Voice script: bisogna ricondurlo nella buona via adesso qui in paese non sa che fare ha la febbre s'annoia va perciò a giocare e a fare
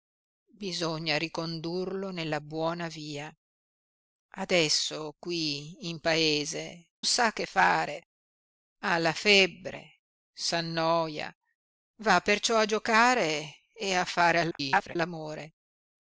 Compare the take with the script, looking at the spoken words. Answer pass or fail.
fail